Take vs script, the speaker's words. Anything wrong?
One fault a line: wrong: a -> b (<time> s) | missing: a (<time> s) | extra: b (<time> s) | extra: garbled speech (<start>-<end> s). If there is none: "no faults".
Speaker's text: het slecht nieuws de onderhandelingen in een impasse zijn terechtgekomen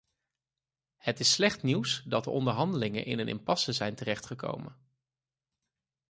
extra: is (1.2 s)
extra: dat (2.0 s)